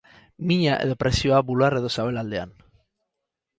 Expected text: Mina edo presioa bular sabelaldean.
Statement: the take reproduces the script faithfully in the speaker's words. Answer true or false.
false